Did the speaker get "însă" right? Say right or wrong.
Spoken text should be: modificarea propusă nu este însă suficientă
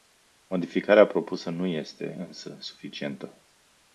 right